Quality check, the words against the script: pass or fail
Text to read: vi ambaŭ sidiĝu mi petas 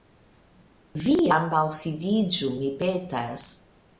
pass